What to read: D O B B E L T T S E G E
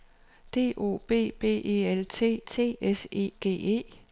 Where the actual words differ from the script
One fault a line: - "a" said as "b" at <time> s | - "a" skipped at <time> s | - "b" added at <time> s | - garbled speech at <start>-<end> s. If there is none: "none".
none